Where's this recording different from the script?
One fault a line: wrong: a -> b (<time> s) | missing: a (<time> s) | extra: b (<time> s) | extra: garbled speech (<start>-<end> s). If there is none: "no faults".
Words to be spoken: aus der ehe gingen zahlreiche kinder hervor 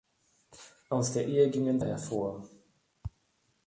missing: zahlreiche kinder (1.8 s)